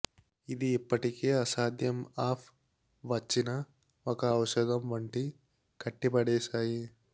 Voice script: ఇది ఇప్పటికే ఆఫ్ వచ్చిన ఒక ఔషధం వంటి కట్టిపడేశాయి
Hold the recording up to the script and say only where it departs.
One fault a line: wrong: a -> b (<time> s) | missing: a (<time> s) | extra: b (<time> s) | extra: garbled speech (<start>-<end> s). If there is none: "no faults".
extra: అసాధ్యం (1.3 s)